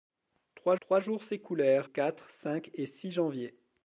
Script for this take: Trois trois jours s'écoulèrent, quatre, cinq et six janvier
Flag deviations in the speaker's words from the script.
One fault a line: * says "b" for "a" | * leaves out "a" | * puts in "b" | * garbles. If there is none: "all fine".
all fine